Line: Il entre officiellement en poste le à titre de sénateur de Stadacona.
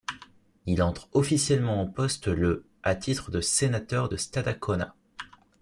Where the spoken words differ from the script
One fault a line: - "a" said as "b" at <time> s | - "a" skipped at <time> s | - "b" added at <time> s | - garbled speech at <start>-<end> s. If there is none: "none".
none